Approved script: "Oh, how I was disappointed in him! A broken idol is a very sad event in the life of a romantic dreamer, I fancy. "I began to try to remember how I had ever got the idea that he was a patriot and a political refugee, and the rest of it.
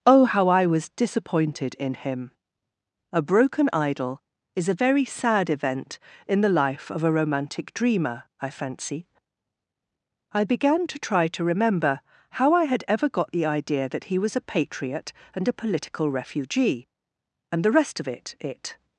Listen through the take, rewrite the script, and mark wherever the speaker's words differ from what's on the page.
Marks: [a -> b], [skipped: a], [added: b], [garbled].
"Oh, how I was disappointed in him! A broken idol is a very sad event in the life of a romantic dreamer, I fancy. "I began to try to remember how I had ever got the idea that he was a patriot and a political refugee, and the rest of it. [added: it]